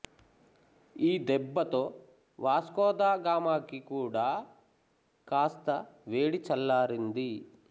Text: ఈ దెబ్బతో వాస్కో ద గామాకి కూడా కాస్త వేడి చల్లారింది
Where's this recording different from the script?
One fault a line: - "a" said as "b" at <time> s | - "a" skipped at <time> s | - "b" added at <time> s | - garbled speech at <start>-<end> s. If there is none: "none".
none